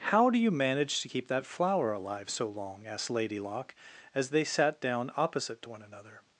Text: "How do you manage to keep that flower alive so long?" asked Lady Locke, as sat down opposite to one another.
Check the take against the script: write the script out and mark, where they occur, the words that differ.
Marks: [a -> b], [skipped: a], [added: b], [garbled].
"How do you manage to keep that flower alive so long?" asked Lady Locke, as [added: they] sat down opposite to one another.